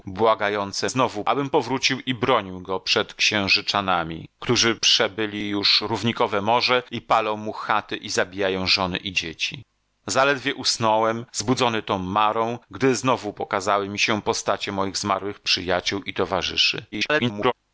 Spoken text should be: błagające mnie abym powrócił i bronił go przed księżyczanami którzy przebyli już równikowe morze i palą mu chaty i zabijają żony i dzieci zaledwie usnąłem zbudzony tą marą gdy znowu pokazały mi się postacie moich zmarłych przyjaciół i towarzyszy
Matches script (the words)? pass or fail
fail